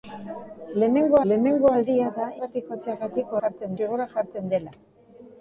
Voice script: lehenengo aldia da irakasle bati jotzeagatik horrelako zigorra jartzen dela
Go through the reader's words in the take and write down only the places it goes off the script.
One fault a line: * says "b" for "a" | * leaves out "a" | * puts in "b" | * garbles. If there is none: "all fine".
* puts in "lehenengo"
* leaves out "irakasle"
* says "jartzen" for "horrelako"